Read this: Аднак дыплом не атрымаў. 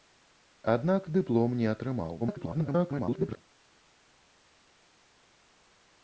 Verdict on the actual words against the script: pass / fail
fail